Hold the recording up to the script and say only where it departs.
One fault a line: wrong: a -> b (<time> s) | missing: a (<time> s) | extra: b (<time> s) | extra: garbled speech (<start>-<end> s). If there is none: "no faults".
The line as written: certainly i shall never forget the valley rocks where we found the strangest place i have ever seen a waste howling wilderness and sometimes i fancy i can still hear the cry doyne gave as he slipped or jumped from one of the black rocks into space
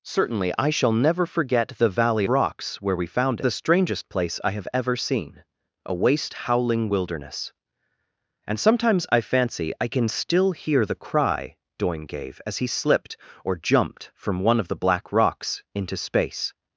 no faults